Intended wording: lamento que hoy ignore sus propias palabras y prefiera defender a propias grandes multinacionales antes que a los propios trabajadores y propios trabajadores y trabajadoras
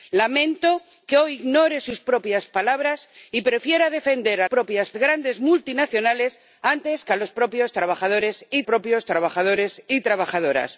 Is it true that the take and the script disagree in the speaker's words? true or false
false